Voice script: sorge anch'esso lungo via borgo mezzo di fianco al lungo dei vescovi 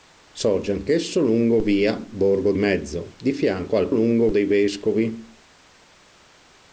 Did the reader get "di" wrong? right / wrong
right